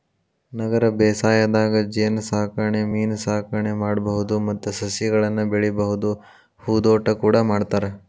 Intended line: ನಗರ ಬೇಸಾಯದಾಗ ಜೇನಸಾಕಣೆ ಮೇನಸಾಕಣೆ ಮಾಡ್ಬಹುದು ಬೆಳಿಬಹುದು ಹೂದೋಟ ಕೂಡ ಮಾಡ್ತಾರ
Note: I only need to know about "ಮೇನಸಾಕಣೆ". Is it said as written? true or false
true